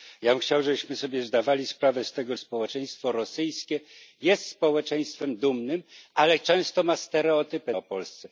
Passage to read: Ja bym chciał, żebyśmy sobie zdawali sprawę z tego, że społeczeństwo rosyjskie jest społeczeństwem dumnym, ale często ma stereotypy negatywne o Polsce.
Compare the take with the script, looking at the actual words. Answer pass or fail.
fail